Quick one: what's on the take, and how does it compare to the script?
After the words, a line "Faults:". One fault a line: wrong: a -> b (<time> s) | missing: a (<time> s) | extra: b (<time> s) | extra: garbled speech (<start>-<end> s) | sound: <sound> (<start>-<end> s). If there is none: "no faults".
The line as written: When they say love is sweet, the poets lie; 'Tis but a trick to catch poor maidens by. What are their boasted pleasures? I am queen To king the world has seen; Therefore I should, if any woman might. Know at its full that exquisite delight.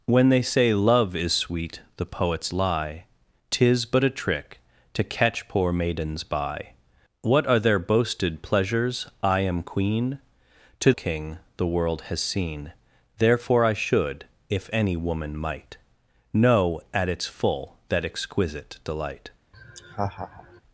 When they say love is sweet, the poets lie; 'Tis but a trick to catch poor maidens by. What are their boasted pleasures? I am queen To king the world has seen; Therefore I should, if any woman might. Know at its full that exquisite delight.
Faults:
sound: laugh (19.5-20.6 s)